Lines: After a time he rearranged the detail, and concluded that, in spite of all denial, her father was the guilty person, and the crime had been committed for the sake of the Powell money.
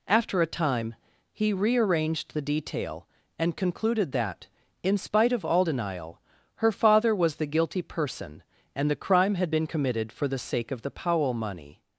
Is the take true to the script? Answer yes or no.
yes